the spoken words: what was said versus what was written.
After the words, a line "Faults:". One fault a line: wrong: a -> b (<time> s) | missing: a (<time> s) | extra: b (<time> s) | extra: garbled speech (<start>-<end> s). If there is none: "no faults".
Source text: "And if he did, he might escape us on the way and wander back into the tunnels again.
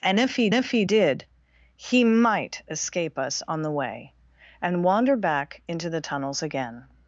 "And if he if he did, he might escape us on the way and wander back into the tunnels again.
Faults:
extra: if he (0.5 s)